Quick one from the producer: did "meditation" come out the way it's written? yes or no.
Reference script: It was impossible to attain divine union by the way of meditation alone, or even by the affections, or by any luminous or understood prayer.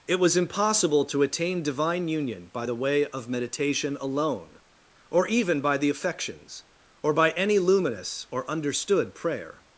yes